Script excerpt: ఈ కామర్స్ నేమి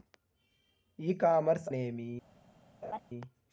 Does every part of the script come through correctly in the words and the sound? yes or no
no